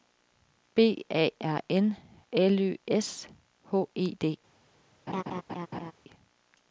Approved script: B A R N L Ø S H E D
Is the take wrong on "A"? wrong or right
right